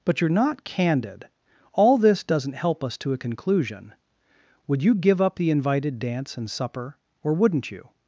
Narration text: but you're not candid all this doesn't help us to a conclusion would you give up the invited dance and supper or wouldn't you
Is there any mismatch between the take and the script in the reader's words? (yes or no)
no